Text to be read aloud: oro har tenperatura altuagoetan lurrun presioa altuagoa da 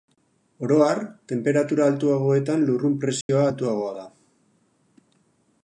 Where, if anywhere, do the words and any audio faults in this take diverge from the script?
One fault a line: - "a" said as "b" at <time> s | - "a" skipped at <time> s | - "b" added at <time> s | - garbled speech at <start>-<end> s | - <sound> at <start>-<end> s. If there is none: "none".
- dropout at 3.2-3.3 s